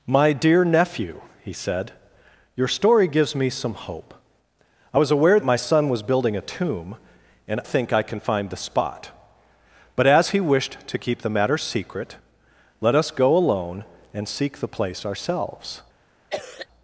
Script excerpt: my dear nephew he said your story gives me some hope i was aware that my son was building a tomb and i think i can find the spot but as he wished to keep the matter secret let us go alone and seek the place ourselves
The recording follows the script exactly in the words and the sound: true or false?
false